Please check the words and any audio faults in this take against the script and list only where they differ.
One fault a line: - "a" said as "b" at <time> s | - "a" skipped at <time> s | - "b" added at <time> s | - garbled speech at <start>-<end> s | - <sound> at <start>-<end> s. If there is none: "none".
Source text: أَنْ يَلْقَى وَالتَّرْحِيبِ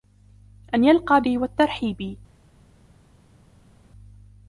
none